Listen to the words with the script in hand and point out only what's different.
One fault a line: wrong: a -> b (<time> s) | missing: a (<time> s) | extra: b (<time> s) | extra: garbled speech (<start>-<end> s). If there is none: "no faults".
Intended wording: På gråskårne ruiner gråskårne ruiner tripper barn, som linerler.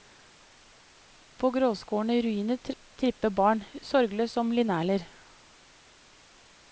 missing: gråskårne ruiner (2.6 s)
extra: sorgløst (3.8 s)